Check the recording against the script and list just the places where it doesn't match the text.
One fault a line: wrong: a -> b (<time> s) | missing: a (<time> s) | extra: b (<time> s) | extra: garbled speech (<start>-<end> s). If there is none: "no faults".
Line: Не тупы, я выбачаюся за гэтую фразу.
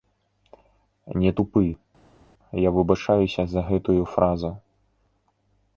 no faults